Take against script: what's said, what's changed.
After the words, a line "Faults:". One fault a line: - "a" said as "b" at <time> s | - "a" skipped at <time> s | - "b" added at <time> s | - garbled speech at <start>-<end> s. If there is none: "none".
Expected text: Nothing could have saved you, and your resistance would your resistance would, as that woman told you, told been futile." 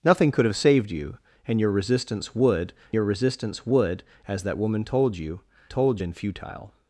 Nothing could have saved you, and your resistance would your resistance would, as that woman told you, told been futile."
Faults:
none